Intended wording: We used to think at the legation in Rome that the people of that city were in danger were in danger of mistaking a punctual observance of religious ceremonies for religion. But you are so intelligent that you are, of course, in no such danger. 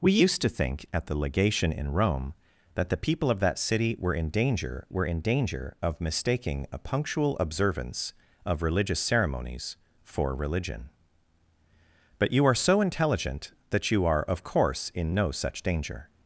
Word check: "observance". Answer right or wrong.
right